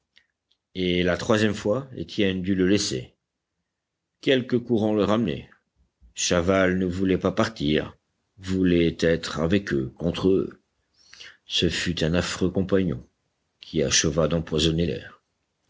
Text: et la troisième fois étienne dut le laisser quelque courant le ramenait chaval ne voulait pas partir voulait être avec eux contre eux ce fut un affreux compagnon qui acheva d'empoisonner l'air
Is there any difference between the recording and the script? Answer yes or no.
no